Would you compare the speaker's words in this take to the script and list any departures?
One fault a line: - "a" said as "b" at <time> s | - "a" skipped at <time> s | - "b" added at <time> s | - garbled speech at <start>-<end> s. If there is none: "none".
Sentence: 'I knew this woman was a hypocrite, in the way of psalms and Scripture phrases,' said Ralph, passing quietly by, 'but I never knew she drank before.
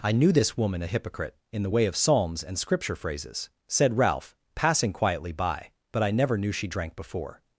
- "was" skipped at 0.8 s